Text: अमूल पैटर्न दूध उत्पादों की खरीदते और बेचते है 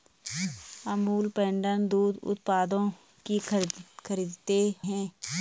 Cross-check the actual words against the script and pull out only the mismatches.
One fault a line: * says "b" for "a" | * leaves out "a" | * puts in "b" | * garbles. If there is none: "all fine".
* leaves out "और बेचते"